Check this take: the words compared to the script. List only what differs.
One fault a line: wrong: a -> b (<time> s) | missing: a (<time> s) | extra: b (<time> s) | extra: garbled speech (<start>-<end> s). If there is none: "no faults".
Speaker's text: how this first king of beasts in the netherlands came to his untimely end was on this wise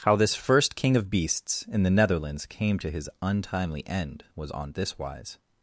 no faults